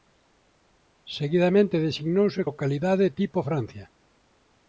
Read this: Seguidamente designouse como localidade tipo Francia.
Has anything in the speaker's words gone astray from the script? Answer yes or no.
yes